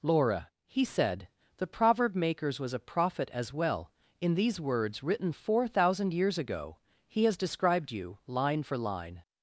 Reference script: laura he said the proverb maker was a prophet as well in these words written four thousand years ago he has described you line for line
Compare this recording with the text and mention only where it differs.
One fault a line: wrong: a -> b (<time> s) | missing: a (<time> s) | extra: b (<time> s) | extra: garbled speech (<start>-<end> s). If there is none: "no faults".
wrong: maker -> makers (2.1 s)